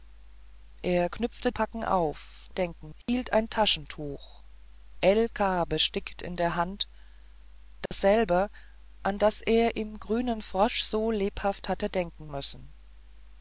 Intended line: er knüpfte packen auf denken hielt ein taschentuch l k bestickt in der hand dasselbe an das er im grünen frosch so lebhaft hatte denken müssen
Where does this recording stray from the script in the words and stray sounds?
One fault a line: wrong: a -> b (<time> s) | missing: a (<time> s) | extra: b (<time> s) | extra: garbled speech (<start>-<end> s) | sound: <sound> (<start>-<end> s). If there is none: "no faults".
sound: dropout (3.0-3.1 s)
sound: dropout (7.9-7.9 s)